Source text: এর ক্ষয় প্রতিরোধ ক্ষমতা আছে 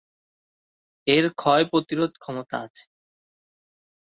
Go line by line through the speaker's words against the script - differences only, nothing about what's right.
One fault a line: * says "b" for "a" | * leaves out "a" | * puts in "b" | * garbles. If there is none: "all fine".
all fine